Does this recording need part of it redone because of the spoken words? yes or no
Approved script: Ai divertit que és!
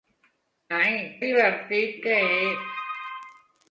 no